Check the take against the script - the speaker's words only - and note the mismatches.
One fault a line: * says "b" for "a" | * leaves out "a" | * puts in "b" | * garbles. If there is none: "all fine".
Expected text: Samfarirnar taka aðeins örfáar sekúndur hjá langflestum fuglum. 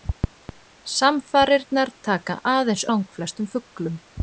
* leaves out "örfáar sekúndur hjá"